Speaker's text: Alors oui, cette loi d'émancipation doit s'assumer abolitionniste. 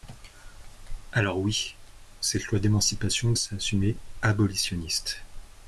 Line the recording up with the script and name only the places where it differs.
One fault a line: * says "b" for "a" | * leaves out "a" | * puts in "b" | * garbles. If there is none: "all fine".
* leaves out "doit"